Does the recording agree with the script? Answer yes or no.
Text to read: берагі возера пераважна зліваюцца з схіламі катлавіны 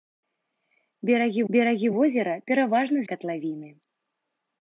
no